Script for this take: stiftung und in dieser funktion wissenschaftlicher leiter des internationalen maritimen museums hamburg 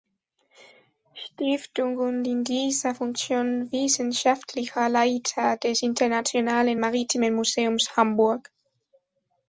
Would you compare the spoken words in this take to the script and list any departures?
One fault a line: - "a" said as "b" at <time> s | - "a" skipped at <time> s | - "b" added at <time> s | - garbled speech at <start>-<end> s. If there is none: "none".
none